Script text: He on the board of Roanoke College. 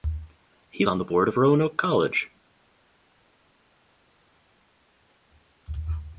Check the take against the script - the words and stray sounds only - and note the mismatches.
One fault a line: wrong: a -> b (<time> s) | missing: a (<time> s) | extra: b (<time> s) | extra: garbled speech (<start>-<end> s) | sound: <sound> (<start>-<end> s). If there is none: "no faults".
no faults